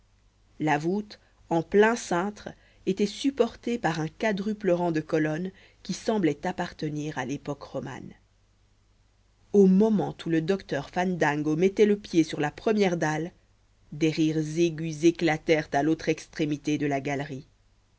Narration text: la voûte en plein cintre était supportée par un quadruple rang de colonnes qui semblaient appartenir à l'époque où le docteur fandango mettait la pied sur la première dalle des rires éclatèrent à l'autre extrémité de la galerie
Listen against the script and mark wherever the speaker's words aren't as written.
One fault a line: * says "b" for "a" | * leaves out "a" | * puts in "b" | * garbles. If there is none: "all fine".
* puts in "romane au moment"
* says "le" for "la"
* puts in "aigus"